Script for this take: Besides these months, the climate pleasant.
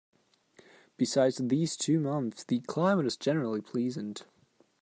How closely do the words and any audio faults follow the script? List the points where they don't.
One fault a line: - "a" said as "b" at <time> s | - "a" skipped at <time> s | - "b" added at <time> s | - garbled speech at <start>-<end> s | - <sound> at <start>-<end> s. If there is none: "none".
- "two" added at 1.8 s
- "is generally" added at 3.1 s